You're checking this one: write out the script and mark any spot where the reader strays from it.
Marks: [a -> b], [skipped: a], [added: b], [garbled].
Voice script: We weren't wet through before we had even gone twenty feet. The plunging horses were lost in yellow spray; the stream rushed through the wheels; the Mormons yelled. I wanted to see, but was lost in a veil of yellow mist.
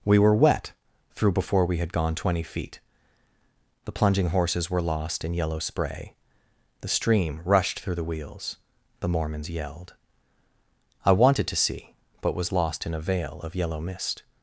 We [weren't -> were] wet through before we had [skipped: even] gone twenty feet. The plunging horses were lost in yellow spray; the stream rushed through the wheels; the Mormons yelled. I wanted to see, but was lost in a veil of yellow mist.